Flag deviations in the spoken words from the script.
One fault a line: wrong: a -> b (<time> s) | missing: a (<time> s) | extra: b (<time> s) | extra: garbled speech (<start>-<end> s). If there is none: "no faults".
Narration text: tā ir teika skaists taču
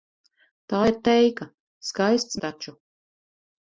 no faults